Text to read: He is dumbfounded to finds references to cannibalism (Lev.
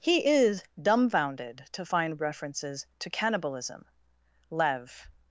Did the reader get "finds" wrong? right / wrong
wrong